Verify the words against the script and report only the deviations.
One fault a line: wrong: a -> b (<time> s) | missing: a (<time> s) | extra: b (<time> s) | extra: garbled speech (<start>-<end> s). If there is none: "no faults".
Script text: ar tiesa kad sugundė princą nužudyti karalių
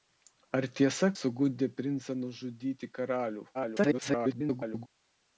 missing: kad (1.1 s)
extra: garbled speech (3.5-4.9 s)